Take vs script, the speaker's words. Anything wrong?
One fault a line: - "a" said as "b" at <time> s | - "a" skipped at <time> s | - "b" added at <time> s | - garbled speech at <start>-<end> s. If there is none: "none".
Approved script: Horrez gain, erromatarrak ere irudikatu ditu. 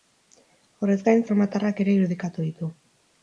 none